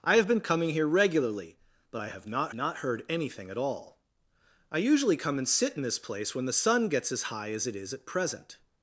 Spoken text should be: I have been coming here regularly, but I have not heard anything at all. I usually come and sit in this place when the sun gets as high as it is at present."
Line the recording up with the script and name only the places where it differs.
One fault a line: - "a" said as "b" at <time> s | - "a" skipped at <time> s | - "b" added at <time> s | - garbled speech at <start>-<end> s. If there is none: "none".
- "not" added at 2.5 s